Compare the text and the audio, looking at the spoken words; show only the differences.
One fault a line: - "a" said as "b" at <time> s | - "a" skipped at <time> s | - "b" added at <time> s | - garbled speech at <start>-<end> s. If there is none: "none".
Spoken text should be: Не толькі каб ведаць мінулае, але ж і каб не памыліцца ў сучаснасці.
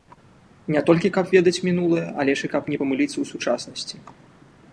none